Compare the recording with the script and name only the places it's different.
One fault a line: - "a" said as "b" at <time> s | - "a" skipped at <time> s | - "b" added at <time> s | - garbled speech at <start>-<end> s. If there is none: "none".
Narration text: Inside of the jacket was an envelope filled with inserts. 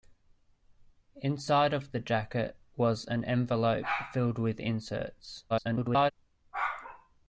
- garbled speech at 5.5-6.1 s